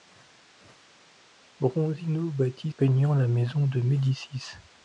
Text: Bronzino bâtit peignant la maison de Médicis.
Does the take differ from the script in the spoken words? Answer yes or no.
no